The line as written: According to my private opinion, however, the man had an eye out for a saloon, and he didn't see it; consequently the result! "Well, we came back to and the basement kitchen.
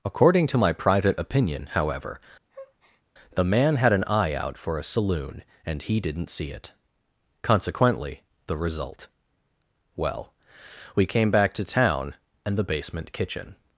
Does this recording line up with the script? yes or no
no